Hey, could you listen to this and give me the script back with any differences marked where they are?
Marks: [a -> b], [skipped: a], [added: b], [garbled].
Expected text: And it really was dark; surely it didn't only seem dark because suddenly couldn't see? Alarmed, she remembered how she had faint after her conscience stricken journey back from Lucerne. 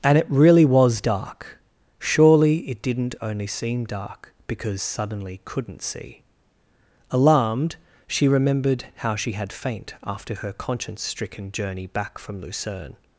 And it really was dark; surely it didn't only seem dark because suddenly couldn't see? Alarmed, she remembered how she had faint after her conscience stricken journey back from Lucerne.